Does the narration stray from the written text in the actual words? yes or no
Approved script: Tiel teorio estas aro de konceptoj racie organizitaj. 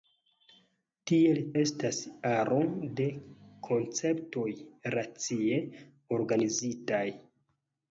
yes